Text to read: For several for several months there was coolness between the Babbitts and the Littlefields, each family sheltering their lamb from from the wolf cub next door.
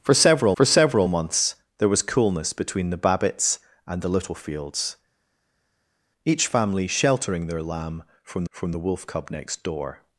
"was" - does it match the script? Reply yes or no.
yes